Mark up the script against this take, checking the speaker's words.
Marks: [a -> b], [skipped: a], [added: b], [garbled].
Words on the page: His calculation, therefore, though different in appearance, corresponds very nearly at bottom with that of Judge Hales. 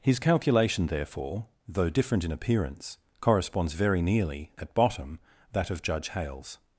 His calculation, therefore, though different in appearance, corresponds very nearly at bottom [skipped: with] that of Judge Hales.